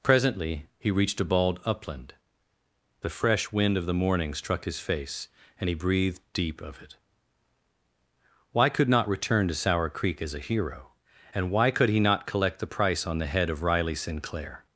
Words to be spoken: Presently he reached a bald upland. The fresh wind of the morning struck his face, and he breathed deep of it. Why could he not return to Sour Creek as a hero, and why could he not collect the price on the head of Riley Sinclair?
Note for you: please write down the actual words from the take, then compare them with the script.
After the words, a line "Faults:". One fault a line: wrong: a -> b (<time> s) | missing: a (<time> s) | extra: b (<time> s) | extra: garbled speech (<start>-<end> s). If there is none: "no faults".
Presently he reached a bald upland. The fresh wind of the morning struck his face, and he breathed deep of it. Why could not return to Sour Creek as a hero, and why could he not collect the price on the head of Riley Sinclair?
Faults:
missing: he (8.9 s)